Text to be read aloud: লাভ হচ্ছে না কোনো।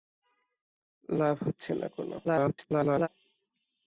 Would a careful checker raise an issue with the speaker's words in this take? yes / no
yes